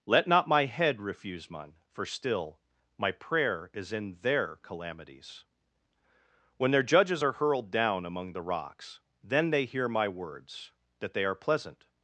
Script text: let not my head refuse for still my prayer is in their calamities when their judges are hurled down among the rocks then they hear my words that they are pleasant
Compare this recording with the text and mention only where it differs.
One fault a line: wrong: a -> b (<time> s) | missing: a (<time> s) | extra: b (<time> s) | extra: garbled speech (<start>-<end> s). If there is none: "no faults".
extra: mine (1.5 s)